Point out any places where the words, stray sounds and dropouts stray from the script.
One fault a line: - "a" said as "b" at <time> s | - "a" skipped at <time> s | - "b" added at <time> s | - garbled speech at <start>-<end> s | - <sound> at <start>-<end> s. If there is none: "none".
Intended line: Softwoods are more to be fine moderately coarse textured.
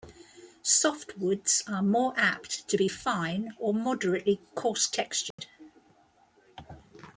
- "apt" added at 2.2 s
- "or" added at 3.6 s
- dropout at 5.3-5.4 s